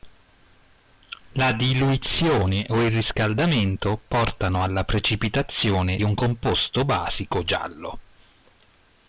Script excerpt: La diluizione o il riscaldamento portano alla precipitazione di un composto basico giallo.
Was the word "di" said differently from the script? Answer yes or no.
yes